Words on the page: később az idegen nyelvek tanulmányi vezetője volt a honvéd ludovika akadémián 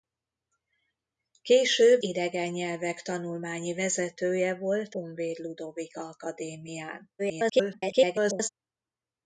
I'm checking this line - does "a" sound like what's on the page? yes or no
no